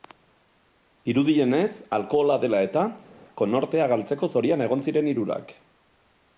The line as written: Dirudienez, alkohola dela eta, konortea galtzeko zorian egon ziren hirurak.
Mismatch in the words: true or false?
false